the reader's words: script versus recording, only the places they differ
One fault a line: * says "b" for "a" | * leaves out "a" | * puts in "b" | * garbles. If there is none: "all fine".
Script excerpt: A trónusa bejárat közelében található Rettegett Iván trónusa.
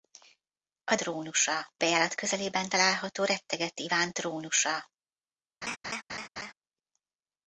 all fine